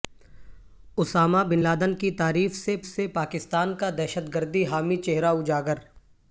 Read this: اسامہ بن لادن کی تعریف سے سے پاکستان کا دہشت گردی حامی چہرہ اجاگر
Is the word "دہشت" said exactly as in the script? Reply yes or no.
yes